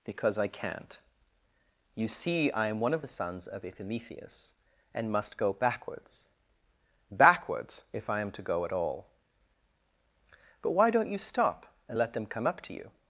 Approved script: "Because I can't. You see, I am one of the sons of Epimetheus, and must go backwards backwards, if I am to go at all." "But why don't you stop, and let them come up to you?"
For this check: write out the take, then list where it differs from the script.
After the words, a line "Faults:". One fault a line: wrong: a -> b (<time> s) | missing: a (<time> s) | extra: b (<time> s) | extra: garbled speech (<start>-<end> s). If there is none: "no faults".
"Because I can't. You see, I am one of the sons of Epimetheus, and must go backwards backwards, if I am to go at all." "But why don't you stop, and let them come up to you?"
Faults:
no faults